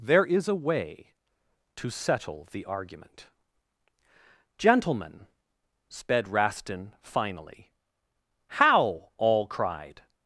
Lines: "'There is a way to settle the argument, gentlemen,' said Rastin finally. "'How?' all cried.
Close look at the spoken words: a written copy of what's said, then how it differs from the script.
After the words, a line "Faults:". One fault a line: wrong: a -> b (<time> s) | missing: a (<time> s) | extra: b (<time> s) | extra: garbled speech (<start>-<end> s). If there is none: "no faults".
"'There is a way to settle the argument, gentlemen,' sped Rastin finally. "'How?' all cried.
Faults:
wrong: said -> sped (5.9 s)